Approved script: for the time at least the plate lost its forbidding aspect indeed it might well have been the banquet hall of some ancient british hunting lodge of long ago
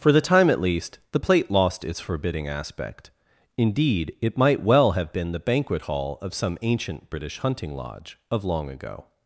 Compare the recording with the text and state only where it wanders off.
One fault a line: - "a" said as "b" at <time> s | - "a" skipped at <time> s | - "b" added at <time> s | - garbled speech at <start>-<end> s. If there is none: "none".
none